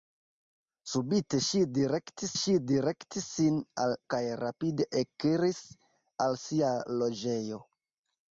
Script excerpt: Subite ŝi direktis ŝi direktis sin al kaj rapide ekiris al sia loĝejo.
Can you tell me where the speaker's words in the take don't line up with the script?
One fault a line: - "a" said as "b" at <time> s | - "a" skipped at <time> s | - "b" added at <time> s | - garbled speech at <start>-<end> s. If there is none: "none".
none